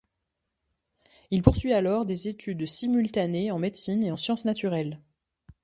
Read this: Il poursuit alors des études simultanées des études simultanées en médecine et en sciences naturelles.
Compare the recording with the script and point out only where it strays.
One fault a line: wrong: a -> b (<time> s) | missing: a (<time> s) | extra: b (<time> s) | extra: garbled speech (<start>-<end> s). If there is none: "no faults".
missing: des études simultanées (3.5 s)